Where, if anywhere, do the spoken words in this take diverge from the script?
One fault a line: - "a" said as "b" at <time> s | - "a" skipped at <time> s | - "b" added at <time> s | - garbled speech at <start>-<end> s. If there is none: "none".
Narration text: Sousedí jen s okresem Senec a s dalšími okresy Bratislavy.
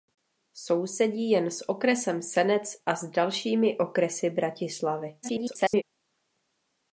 - garbled speech at 5.2-5.8 s